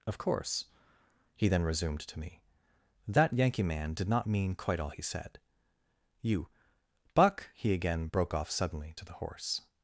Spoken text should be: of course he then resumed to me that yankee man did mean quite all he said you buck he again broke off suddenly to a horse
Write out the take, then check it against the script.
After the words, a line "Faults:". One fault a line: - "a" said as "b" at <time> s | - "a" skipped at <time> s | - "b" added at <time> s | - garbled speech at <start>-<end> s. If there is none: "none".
of course he then resumed to me that yankee man did not mean quite all he said you buck he again broke off suddenly to the horse
Faults:
- "not" added at 4.1 s
- "a" said as "the" at 9.0 s